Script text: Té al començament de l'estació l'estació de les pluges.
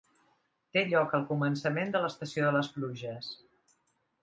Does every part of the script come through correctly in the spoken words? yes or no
no